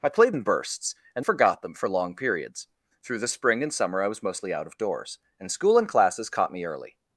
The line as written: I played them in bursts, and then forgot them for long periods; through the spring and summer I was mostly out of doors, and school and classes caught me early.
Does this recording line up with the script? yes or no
no